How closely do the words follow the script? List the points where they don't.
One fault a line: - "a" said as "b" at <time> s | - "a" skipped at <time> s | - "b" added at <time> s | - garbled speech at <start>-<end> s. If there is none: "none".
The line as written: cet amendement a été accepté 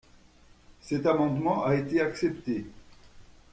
none